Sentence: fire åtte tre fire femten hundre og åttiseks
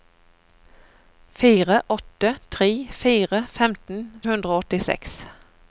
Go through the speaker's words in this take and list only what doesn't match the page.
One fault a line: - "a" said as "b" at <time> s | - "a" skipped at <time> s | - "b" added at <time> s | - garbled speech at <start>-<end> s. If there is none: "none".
none